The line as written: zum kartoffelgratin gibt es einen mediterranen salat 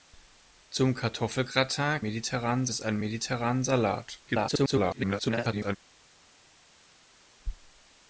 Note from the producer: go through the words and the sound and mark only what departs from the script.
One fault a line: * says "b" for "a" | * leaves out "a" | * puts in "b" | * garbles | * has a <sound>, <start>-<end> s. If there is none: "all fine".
* says "mediterranen" for "gibt"
* garbles